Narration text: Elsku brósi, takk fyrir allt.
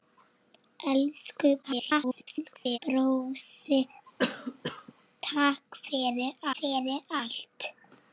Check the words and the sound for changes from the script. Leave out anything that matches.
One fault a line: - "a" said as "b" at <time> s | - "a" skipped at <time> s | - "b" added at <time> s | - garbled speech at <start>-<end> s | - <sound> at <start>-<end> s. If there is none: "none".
- garbled speech at 1.6-2.8 s
- cough at 4.2-4.9 s
- "fyrir" added at 6.5 s